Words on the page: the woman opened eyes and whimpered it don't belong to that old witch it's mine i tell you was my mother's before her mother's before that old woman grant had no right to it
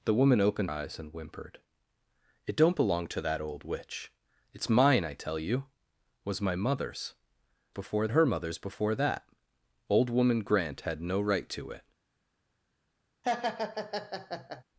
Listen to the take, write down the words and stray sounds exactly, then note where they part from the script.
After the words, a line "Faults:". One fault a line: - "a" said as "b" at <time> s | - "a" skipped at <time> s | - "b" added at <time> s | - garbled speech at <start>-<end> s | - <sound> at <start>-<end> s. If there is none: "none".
the woman opened eyes and whimpered it don't belong to that old witch it's mine i tell you was my mother's before her mother's before that old woman grant had no right to it
Faults:
- laugh at 13.2-14.6 s